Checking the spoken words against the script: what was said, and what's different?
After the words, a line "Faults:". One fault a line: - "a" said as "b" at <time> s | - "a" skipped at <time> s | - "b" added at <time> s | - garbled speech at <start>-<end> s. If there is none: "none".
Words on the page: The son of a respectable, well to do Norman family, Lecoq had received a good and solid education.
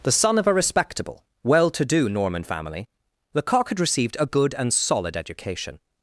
The son of a respectable, well to do Norman family, Lecoq had received a good and solid education.
Faults:
none